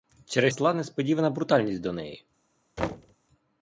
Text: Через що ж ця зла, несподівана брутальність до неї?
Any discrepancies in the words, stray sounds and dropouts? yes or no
yes